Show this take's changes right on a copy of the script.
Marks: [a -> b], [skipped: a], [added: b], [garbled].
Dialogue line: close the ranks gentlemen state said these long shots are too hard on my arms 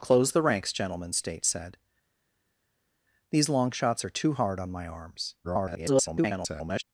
close the ranks gentlemen state said these long shots are too hard on my arms [garbled]